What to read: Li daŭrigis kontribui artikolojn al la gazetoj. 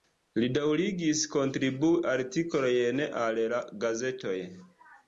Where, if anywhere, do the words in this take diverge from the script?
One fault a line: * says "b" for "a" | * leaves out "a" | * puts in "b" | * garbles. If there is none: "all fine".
all fine